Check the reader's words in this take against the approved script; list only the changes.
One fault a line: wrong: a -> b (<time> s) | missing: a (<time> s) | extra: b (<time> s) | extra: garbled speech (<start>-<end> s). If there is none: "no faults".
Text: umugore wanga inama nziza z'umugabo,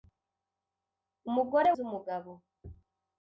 missing: wanga inama nziza (1.7 s)